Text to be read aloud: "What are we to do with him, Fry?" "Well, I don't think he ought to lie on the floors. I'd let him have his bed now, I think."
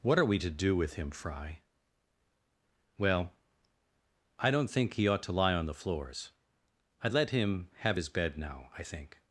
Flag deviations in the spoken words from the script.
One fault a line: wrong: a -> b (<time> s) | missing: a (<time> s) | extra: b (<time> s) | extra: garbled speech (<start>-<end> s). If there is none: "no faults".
no faults